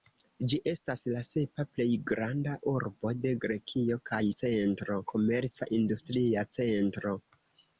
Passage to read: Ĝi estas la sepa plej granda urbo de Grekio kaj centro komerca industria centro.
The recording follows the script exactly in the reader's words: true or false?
true